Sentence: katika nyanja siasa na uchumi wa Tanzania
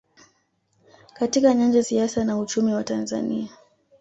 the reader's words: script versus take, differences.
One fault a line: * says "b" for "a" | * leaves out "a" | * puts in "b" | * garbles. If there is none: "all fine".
all fine